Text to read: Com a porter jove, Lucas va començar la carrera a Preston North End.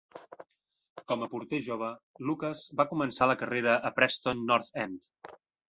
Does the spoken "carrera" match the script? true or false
true